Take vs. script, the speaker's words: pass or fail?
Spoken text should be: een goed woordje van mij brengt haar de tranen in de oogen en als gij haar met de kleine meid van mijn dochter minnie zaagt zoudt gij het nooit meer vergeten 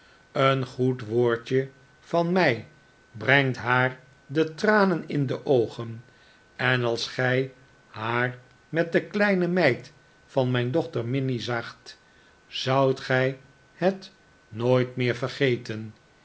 pass